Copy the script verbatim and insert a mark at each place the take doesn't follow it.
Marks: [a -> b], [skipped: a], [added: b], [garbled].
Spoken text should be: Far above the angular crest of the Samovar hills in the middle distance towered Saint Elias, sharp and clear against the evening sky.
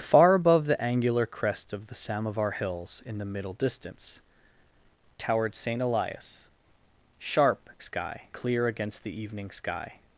Far above the angular crest of the Samovar hills in the middle distance towered Saint Elias, sharp [and -> sky] clear against the evening sky.